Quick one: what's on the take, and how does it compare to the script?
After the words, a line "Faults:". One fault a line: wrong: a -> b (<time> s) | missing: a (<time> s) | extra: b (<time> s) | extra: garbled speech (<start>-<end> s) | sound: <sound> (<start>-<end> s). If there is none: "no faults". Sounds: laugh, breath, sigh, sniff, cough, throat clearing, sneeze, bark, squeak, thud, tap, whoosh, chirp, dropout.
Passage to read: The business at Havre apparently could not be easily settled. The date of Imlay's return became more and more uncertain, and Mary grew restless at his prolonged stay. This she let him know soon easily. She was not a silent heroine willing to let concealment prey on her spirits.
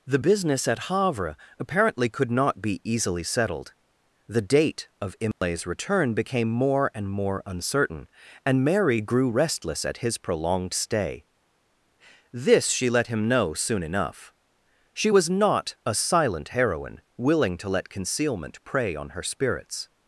The business at Havre apparently could not be easily settled. The date of Imlay's return became more and more uncertain, and Mary grew restless at his prolonged stay. This she let him know soon enough. She was not a silent heroine willing to let concealment prey on her spirits.
Faults:
sound: dropout (5.3-5.4 s)
wrong: easily -> enough (13.8 s)